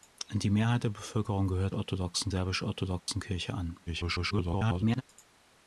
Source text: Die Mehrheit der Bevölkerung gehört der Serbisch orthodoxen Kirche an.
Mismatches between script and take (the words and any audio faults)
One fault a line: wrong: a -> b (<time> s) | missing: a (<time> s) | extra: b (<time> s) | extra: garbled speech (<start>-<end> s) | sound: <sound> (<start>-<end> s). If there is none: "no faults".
wrong: der -> orthodoxen (1.7 s)
sound: dropout (3.0-3.1 s)
extra: garbled speech (3.9-5.0 s)